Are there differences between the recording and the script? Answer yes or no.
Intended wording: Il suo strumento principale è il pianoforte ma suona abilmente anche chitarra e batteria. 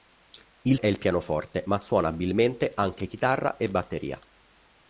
yes